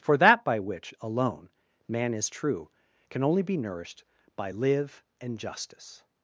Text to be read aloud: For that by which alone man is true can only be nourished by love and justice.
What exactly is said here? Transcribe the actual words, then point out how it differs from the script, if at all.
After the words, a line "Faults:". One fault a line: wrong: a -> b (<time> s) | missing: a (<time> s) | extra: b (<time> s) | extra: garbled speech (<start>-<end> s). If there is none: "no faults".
For that by which alone man is true can only be nourished by live and justice.
Faults:
wrong: love -> live (4.5 s)